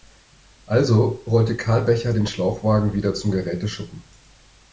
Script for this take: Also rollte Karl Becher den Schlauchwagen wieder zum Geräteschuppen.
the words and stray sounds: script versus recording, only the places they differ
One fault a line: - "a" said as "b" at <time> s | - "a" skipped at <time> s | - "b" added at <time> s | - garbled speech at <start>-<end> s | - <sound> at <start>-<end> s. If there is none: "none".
none